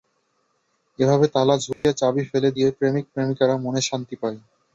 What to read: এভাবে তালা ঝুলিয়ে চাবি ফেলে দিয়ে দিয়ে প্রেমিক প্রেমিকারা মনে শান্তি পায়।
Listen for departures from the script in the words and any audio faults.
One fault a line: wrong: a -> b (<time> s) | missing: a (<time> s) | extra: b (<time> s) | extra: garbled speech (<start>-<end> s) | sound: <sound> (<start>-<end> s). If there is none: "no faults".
sound: dropout (1.7-1.8 s)
missing: দিয়ে (2.7 s)